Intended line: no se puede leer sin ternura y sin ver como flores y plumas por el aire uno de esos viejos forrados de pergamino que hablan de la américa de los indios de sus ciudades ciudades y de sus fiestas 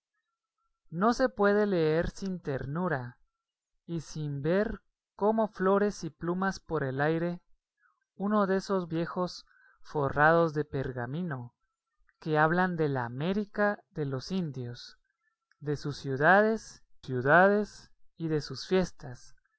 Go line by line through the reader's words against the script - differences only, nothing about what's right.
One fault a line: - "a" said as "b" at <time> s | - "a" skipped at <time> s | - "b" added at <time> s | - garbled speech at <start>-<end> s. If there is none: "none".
none